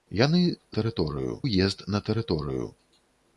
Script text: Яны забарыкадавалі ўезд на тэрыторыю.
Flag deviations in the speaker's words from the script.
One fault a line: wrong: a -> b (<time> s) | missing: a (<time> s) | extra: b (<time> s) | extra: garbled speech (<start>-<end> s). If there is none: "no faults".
wrong: забарыкадавалі -> тэрыторыю (0.8 s)